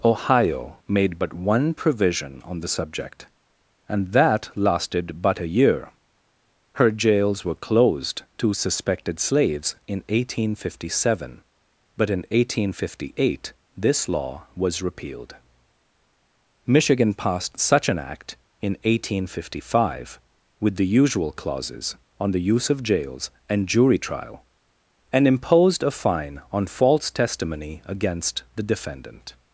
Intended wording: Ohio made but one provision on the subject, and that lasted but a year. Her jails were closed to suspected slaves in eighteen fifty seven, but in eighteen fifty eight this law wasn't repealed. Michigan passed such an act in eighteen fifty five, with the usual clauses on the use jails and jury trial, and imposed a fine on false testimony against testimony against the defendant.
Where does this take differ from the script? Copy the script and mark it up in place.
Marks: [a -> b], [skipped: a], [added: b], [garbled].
Ohio made but one provision on the subject, and that lasted but a year. Her jails were closed to suspected slaves in eighteen fifty seven, but in eighteen fifty eight this law [wasn't -> was] repealed. Michigan passed such an act in eighteen fifty five, with the usual clauses on the use [added: of] jails and jury trial, and imposed a fine on false testimony against [skipped: testimony against] the defendant.